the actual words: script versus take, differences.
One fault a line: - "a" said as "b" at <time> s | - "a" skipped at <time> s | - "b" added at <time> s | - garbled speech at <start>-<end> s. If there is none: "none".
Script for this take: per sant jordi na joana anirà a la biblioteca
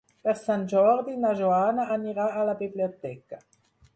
none